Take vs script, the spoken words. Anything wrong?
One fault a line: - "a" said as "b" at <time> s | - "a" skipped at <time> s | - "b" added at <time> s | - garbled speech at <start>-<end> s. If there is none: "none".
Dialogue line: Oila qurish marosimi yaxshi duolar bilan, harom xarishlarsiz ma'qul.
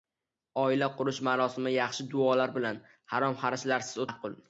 none